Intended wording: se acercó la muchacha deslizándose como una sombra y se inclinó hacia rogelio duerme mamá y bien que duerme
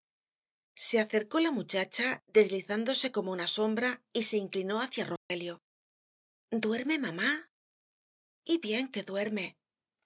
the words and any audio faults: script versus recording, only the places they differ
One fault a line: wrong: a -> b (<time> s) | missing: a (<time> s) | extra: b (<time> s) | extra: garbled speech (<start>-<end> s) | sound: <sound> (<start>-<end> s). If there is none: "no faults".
sound: dropout (5.2-5.3 s)